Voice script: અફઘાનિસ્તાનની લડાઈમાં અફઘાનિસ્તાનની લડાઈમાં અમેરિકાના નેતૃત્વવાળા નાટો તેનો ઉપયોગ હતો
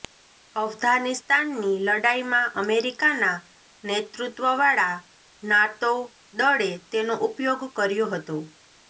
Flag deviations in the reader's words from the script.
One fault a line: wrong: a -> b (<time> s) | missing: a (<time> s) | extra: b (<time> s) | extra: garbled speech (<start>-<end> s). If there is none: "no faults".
missing: અફઘાનિસ્તાનની લડાઈમાં (2.5 s)
extra: દળે (6.4 s)
extra: કર્યો (7.7 s)